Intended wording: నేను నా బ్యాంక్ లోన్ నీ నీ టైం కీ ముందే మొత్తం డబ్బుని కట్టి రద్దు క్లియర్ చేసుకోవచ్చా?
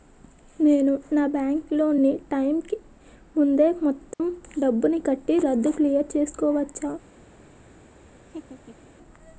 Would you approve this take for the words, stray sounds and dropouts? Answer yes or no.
no